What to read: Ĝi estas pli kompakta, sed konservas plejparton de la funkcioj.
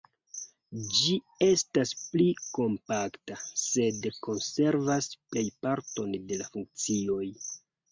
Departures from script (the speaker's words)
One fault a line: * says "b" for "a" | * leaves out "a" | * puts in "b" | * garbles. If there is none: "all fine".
all fine